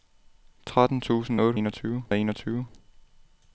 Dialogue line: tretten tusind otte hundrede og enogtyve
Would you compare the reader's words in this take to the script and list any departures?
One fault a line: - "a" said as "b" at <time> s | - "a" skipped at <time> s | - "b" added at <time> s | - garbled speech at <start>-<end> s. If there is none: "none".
- "hundrede" said as "enogtyve" at 1.6 s